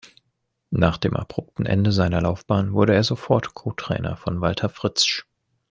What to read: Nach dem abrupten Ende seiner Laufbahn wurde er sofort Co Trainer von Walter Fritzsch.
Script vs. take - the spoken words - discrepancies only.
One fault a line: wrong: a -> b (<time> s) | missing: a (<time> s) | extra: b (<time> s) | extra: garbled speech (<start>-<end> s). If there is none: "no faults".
no faults